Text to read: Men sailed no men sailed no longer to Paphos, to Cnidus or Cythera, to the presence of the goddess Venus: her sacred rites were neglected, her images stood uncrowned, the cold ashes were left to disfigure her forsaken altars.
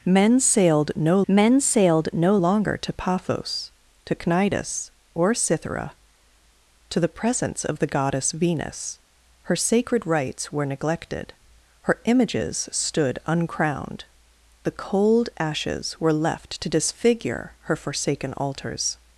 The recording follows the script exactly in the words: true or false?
true